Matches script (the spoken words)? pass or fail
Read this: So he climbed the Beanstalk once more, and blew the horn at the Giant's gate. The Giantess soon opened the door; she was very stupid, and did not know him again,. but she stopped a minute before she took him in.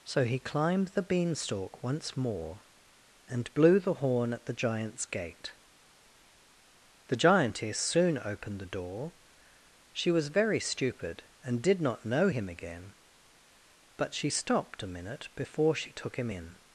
pass